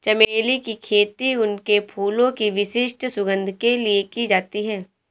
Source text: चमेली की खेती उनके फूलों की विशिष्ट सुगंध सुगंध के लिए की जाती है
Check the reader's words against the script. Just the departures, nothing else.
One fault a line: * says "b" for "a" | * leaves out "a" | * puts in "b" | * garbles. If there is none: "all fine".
* leaves out "सुगंध"